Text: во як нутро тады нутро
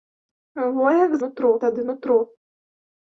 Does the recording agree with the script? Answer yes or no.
yes